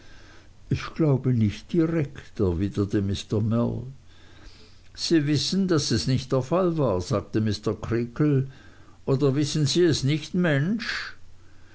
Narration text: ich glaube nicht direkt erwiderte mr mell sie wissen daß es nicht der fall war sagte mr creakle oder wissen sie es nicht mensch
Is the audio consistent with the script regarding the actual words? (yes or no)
yes